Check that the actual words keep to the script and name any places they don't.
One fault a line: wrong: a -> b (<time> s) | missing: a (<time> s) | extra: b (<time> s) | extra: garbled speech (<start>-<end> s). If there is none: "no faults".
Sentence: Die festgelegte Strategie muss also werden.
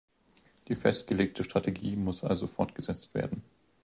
extra: fortgesetzt (2.5 s)